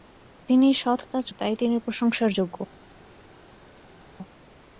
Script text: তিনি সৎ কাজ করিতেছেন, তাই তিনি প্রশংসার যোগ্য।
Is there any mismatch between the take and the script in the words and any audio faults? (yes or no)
yes